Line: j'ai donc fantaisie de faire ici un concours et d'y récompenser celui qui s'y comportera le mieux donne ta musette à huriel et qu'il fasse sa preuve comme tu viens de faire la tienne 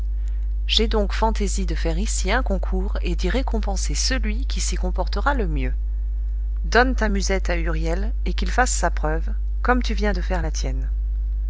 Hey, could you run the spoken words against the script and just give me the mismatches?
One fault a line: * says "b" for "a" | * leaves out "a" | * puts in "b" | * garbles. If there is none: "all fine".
all fine